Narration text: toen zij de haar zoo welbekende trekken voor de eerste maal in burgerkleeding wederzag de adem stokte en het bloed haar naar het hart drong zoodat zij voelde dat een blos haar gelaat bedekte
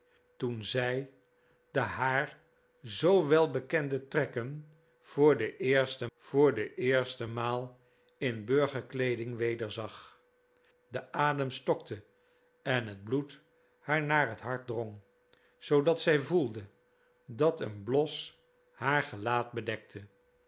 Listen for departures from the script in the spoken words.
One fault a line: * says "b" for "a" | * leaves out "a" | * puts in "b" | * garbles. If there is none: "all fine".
* puts in "voor de eerste"